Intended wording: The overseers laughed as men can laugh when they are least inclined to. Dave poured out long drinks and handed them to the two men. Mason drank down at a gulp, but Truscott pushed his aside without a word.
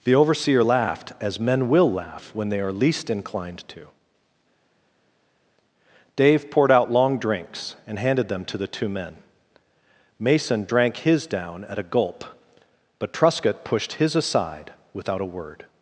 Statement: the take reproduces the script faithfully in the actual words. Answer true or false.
false